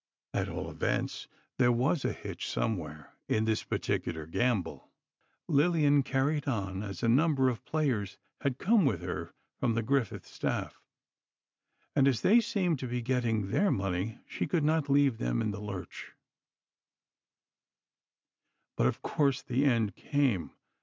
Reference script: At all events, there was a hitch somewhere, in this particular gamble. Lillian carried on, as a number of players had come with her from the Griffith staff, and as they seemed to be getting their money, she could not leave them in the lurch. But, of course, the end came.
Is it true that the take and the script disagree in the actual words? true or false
false